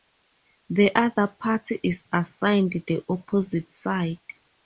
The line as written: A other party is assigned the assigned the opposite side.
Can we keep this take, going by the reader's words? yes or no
no